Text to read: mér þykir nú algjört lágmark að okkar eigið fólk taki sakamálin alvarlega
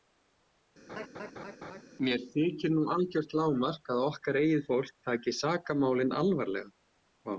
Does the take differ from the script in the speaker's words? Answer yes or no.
no